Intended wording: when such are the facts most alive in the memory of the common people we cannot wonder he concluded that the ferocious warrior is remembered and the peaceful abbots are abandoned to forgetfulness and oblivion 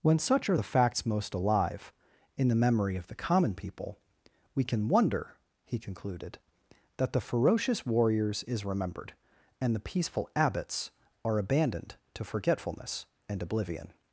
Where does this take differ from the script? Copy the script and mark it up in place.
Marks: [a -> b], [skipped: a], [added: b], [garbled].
when such are the facts most alive in the memory of the common people we [cannot -> can] wonder he concluded that the ferocious [warrior -> warriors] is remembered and the peaceful abbots are abandoned to forgetfulness and oblivion